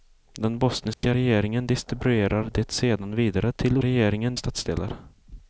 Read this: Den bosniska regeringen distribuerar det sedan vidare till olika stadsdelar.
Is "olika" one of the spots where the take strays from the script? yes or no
yes